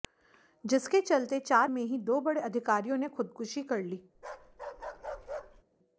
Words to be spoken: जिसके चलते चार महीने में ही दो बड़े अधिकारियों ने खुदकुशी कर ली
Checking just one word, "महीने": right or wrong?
wrong